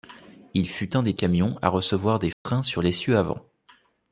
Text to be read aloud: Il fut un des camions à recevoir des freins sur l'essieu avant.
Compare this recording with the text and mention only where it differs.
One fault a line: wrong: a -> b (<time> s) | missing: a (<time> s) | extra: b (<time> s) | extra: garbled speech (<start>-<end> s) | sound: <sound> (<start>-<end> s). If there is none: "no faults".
sound: dropout (2.3-2.5 s)